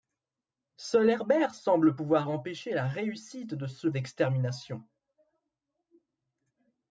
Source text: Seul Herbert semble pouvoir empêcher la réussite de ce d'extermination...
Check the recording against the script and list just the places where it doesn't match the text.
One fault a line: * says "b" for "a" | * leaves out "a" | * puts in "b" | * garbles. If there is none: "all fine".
all fine